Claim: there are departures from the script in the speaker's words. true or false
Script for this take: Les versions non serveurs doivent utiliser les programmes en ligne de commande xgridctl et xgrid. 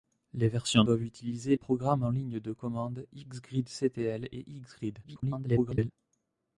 true